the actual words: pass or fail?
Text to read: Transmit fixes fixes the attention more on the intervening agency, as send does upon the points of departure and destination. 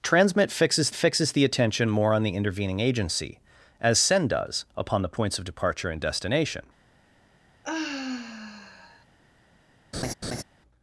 pass